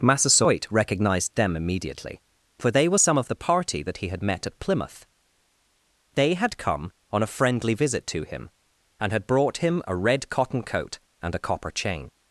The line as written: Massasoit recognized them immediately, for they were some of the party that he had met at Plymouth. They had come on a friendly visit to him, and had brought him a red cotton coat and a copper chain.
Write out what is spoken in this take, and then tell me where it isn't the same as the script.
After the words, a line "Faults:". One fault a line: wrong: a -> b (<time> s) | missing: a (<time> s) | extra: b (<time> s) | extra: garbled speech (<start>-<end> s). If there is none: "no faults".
Massasoit recognized them immediately, for they were some of the party that he had met at Plymouth. They had come on a friendly visit to him, and had brought him a red cotton coat and a copper chain.
Faults:
no faults